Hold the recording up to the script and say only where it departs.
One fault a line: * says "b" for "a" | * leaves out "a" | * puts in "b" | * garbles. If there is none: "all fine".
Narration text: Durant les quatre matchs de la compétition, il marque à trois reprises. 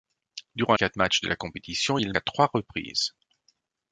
* leaves out "les"
* leaves out "marque"